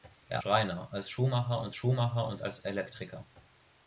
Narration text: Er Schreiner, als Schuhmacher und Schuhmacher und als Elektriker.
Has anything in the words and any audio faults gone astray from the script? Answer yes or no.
no